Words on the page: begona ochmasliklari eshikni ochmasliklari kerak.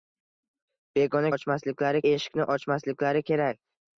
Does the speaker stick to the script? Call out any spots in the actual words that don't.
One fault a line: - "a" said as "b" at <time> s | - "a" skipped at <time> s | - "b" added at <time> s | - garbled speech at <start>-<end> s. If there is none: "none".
none